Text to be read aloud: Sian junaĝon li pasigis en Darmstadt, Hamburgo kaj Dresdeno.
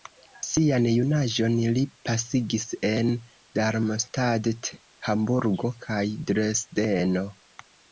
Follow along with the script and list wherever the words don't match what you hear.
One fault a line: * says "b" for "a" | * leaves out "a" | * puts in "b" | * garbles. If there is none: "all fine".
all fine